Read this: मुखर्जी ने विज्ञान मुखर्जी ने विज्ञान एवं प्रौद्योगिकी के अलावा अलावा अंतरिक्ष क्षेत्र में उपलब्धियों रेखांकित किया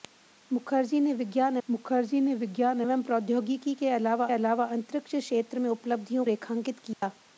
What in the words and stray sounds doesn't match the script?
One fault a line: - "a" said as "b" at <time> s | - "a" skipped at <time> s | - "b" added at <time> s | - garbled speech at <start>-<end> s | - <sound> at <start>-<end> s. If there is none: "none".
- dropout at 6.9-7.0 s